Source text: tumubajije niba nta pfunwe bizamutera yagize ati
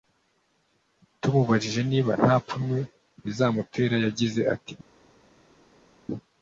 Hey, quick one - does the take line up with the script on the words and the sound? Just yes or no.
yes